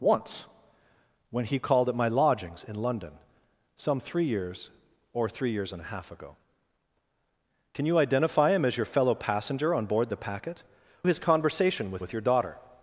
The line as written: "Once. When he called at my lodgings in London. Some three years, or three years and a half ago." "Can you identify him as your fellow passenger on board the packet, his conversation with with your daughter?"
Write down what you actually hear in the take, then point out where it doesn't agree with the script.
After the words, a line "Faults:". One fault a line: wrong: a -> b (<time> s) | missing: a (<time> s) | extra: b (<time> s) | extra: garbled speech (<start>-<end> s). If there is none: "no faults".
"Once. When he called at my lodgings in London. Some three years, or three years and a half ago." "Can you identify him as your fellow passenger on board the packet, his conversation with with your daughter?"
Faults:
no faults